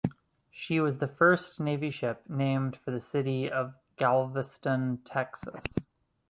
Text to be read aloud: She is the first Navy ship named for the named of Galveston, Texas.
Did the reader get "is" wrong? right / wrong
wrong